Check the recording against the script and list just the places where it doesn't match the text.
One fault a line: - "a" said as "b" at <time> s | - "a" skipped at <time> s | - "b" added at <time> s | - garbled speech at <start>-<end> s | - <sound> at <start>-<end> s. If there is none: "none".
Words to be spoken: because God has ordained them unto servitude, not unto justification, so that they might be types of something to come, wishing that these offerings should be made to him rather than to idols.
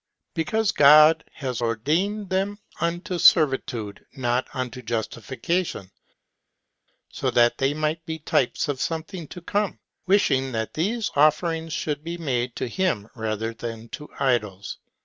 none